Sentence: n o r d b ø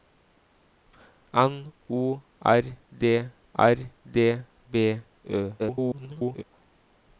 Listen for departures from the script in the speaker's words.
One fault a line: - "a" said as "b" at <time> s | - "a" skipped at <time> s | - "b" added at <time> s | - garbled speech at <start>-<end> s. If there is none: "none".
- "r d" added at 3.5 s
- garbled speech at 5.6-6.4 s